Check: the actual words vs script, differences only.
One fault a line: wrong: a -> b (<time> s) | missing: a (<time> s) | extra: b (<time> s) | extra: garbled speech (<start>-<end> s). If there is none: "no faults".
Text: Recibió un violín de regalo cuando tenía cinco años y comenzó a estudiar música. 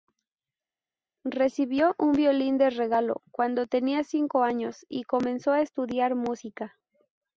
no faults